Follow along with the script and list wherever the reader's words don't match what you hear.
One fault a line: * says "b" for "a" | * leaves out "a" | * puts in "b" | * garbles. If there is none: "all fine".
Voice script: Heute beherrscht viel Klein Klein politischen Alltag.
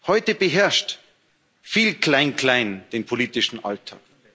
* puts in "den"